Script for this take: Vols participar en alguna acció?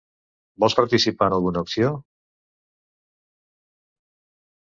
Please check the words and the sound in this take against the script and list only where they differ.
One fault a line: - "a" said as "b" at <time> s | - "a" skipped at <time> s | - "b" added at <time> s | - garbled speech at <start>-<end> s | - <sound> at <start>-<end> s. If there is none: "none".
none